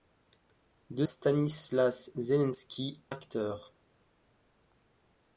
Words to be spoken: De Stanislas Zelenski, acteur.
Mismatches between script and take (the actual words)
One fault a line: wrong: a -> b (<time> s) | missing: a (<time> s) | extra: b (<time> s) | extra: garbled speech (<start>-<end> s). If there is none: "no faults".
no faults